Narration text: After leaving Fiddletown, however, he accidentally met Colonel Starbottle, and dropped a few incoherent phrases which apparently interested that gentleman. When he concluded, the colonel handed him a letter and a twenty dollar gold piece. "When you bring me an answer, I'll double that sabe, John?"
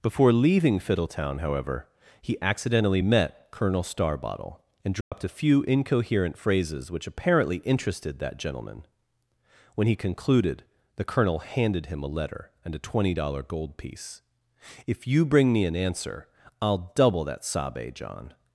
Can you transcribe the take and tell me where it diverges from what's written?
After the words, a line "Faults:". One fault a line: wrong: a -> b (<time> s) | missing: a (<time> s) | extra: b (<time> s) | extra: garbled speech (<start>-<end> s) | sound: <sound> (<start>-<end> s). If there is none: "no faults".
Before leaving Fiddletown, however, he accidentally met Colonel Starbottle, and dropped a few incoherent phrases which apparently interested that gentleman. When he concluded, the colonel handed him a letter and a twenty dollar gold piece. "If you bring me an answer, I'll double that sabe, John?"
Faults:
wrong: After -> Before (0.0 s)
sound: dropout (5.0-5.1 s)
wrong: When -> If (14.9 s)